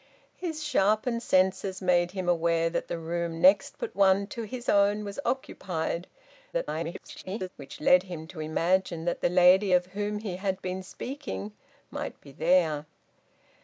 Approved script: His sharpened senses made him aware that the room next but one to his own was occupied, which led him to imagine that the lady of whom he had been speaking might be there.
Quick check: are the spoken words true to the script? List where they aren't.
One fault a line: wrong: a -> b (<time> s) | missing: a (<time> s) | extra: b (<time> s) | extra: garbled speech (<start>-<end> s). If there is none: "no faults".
extra: garbled speech (6.5-7.5 s)